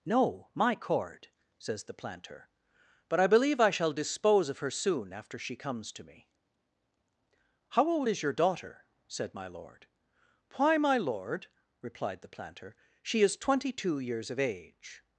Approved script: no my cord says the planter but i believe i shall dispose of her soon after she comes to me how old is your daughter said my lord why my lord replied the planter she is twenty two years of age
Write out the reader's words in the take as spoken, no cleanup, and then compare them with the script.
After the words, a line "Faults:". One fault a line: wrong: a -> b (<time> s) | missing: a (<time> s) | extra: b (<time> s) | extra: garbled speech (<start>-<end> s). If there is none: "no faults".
no my cord says the planter but i believe i shall dispose of her soon after she comes to me how old is your daughter said my lord why my lord replied the planter she is twenty two years of age
Faults:
no faults